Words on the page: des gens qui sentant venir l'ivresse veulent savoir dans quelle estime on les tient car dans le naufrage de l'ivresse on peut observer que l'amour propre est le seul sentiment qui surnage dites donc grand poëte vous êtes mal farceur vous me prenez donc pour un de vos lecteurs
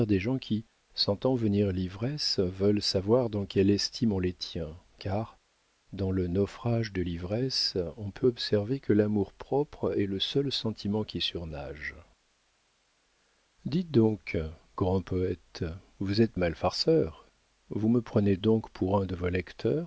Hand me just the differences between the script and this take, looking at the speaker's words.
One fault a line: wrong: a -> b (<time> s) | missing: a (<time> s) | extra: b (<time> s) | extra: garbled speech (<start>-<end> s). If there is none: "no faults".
no faults